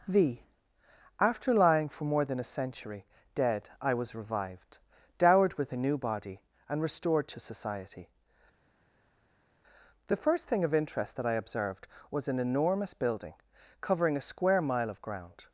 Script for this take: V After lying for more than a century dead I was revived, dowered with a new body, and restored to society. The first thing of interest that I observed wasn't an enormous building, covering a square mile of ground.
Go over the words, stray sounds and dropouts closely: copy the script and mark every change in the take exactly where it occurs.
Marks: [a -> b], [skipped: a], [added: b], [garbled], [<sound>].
V After lying for more than a century dead I was revived, dowered with a new body, and restored to society. The first thing of interest that I observed [wasn't -> was] an enormous building, covering a square mile of ground.